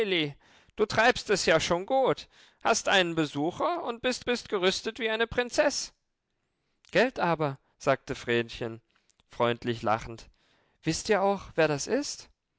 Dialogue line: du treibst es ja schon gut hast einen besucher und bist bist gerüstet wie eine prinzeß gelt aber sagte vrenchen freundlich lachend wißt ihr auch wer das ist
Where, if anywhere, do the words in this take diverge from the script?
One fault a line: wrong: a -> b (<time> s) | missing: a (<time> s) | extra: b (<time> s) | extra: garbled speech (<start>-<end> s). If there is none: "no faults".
no faults